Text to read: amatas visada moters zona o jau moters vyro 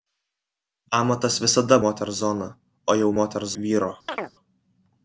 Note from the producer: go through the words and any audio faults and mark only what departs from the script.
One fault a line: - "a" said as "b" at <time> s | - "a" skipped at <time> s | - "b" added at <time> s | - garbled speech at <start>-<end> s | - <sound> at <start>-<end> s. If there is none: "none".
- chirp at 4.1-4.3 s